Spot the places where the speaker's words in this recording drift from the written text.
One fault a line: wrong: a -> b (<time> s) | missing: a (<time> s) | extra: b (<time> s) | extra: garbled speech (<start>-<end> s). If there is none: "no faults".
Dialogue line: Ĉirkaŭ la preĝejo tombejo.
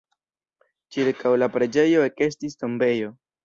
extra: ekestis (2.1 s)